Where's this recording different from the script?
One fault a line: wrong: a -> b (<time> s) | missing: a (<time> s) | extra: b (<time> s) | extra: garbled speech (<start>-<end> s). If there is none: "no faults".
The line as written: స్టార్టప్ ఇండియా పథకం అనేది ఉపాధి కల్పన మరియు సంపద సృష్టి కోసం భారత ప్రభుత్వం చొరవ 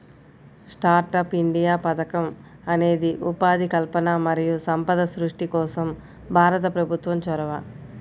no faults